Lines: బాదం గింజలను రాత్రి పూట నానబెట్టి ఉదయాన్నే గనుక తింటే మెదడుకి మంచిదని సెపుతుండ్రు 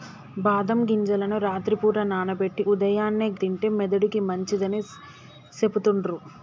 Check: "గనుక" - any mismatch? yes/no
yes